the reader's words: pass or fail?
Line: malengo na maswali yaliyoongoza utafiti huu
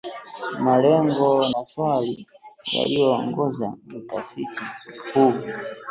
fail